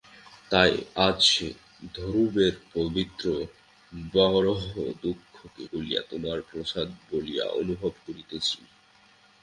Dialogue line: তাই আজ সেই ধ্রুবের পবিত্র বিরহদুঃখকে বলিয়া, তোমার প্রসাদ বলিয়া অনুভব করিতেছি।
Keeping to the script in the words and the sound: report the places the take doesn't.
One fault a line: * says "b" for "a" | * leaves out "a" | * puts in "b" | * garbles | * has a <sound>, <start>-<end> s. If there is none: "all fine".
all fine